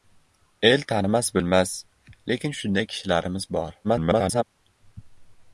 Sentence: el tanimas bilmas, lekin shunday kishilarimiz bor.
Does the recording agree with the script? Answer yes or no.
no